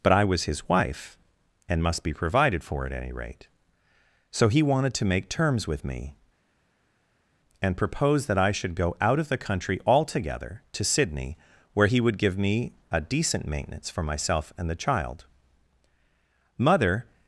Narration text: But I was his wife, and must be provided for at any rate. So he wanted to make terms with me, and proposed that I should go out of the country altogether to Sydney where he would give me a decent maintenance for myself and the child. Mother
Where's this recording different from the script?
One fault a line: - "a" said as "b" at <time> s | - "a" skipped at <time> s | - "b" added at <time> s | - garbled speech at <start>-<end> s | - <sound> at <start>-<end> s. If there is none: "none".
none